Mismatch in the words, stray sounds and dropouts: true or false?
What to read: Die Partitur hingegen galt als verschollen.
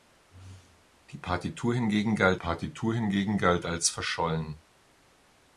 true